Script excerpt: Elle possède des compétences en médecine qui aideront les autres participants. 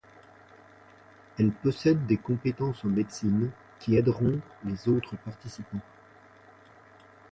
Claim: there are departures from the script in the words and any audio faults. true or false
false